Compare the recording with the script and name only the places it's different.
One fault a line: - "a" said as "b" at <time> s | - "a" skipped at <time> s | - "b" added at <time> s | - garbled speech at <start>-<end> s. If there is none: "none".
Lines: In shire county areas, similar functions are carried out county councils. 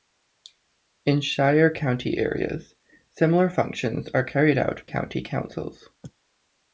none